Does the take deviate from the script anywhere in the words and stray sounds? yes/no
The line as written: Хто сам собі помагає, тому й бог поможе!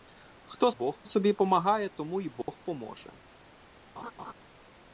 yes